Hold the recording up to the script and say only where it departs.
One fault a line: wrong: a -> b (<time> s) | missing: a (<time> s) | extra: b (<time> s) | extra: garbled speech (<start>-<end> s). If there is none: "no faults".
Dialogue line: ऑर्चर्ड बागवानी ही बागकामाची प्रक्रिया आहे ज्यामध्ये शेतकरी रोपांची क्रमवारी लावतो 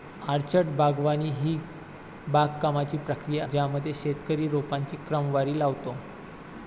missing: आहे (3.5 s)